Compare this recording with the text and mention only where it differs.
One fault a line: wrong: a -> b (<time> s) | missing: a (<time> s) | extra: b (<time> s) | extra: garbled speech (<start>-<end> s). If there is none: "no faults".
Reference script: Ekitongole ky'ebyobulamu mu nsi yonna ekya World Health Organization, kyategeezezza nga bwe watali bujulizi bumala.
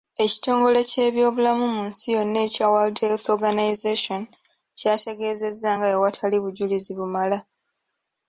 no faults